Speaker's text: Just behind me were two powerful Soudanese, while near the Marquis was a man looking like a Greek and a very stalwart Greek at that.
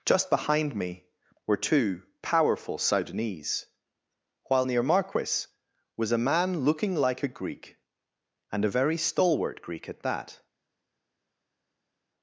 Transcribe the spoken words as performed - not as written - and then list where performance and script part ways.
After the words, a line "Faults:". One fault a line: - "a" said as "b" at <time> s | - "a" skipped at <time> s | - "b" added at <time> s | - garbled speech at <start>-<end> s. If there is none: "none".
Just behind me were two powerful Soudanese, while near Marquis was a man looking like a Greek and a very stalwart Greek at that.
Faults:
- "the" skipped at 4.8 s